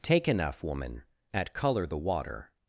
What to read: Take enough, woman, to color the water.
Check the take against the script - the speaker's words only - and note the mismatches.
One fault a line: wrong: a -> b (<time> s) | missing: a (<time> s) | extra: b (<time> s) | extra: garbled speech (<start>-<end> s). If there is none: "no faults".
wrong: to -> at (1.3 s)